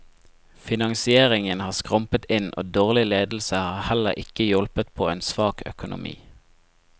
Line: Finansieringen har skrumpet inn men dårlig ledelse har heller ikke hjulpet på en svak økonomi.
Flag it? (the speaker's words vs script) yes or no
yes